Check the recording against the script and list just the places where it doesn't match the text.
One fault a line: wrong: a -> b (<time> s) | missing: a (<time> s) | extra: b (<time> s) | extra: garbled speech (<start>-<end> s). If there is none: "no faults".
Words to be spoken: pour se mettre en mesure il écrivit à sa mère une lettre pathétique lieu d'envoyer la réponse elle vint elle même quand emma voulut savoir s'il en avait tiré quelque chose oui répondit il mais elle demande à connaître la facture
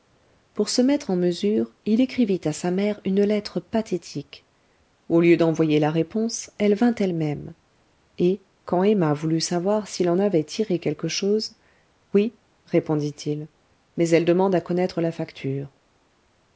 extra: au (5.1 s)
extra: et (8.2 s)